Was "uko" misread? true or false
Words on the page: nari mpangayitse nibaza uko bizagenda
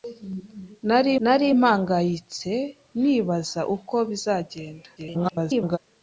false